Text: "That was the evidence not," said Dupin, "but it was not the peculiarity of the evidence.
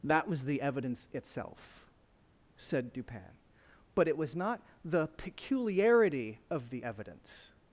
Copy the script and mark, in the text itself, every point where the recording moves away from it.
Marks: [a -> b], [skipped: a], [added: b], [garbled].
"That was the evidence [not," -> itself] said Dupin, "but it was not the peculiarity of the evidence.